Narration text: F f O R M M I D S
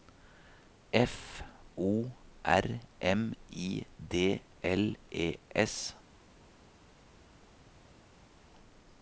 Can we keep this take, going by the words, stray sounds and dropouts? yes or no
no